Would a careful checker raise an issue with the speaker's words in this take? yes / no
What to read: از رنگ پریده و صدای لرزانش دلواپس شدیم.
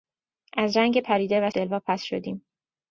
yes